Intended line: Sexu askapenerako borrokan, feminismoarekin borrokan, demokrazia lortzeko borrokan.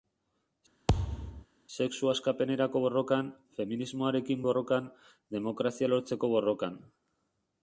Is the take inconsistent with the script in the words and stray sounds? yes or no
yes